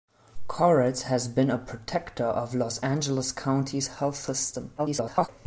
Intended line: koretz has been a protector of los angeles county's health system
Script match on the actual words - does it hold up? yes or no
no